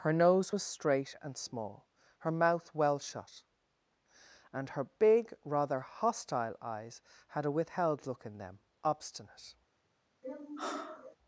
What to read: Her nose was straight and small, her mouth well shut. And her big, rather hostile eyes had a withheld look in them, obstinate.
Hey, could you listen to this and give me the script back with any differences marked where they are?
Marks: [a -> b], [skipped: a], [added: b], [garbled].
Her nose was straight and small, her mouth well shut. And her big, rather hostile eyes had a withheld look in them, obstinate.